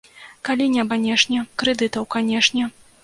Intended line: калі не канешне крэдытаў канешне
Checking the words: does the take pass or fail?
pass